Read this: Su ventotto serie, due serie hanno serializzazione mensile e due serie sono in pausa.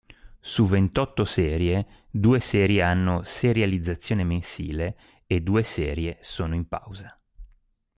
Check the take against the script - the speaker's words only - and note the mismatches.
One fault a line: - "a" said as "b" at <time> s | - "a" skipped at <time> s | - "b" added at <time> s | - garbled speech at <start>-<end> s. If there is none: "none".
none